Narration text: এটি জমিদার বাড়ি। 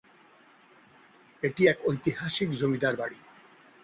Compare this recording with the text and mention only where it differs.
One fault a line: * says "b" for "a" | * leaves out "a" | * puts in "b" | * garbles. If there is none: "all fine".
* puts in "এক ঐতিহাসিক"